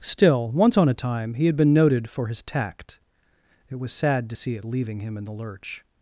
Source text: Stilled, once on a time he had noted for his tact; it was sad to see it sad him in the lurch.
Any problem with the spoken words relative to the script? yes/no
yes